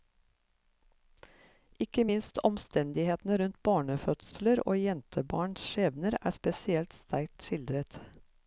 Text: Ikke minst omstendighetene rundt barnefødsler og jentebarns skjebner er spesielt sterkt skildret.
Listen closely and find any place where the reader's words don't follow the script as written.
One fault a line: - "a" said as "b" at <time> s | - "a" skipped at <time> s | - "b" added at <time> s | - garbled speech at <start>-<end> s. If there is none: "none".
none